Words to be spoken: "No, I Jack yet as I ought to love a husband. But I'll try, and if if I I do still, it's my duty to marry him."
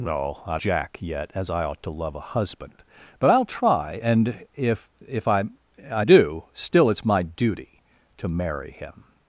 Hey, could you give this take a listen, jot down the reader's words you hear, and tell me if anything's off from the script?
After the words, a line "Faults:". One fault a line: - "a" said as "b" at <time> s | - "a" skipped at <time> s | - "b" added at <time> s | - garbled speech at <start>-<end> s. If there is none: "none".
"No, I Jack yet as I ought to love a husband. But I'll try, and if if I I do still, it's my duty to marry him."
Faults:
none